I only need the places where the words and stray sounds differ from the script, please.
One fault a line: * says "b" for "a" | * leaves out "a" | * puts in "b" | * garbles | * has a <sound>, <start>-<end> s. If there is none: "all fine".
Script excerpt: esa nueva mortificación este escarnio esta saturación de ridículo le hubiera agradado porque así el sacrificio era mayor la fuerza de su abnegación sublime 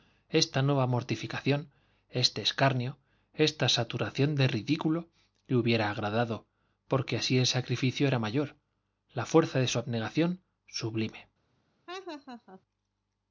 * says "esta" for "esa"
* has a laugh, 11.9-12.6 s